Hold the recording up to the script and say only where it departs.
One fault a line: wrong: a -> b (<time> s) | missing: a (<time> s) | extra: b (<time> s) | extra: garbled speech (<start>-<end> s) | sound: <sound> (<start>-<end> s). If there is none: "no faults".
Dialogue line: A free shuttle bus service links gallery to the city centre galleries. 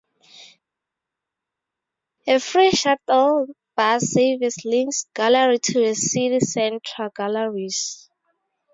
no faults